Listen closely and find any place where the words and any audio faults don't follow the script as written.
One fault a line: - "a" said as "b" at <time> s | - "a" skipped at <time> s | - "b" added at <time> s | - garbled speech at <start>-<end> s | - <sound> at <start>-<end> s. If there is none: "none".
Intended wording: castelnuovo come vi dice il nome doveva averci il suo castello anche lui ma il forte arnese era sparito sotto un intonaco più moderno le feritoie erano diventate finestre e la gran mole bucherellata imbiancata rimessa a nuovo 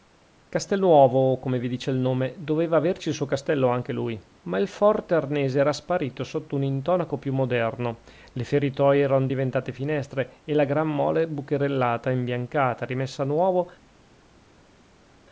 none